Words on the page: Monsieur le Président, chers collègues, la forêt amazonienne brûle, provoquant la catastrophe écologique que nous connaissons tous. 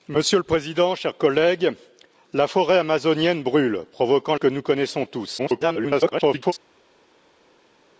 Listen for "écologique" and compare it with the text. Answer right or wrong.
wrong